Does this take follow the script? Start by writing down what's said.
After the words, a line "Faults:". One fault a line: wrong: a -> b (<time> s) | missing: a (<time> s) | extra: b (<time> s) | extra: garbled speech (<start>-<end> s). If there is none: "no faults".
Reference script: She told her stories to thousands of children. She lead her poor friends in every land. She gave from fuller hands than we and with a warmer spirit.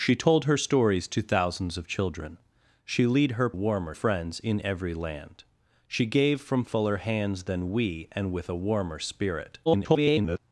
She told her stories to thousands of children. She lead her warmer friends in every land. She gave from fuller hands than we and with a warmer spirit. [garbled]
Faults:
wrong: poor -> warmer (3.5 s)
extra: garbled speech (9.7-10.4 s)